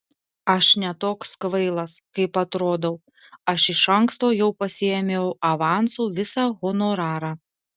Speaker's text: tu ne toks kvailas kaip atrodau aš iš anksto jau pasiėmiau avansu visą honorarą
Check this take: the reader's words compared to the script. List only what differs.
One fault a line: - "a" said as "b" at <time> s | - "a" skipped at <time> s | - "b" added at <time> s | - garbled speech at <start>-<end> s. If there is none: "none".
- "tu" said as "aš" at 0.5 s